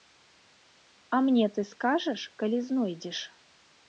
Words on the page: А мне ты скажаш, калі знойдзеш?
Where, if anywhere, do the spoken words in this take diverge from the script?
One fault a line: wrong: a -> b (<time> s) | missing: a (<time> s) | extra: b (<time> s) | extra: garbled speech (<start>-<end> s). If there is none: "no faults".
no faults